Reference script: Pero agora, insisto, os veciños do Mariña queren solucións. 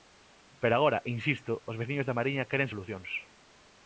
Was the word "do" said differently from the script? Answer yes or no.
yes